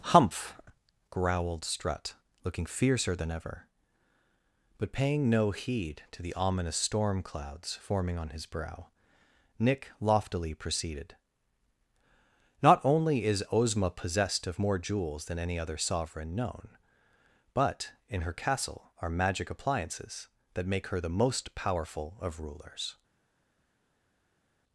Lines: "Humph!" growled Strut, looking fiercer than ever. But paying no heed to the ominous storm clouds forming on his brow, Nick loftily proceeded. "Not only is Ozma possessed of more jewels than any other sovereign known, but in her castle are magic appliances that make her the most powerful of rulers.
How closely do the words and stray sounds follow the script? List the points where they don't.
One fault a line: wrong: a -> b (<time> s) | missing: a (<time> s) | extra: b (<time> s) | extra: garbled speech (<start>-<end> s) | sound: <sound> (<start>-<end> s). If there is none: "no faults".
no faults